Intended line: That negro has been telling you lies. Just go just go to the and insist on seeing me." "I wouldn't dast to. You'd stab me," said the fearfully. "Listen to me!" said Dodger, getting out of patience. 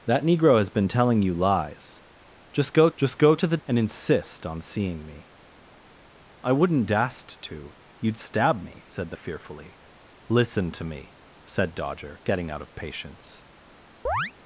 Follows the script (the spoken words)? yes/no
yes